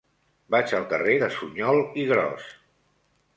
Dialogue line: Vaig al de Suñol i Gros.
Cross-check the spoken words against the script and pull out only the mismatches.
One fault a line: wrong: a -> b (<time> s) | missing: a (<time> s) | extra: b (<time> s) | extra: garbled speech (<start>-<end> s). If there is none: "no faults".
extra: carrer (0.9 s)